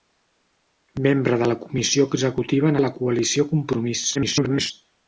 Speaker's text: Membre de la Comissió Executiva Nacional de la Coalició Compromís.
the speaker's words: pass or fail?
fail